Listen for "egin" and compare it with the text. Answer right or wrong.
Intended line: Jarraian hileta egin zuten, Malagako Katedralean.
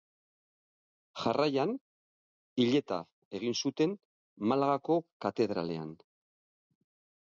right